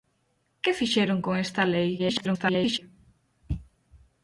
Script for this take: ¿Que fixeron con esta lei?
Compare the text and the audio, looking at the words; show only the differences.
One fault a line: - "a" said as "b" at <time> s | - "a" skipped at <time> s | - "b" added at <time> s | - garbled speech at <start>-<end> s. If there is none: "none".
- garbled speech at 2.0-2.8 s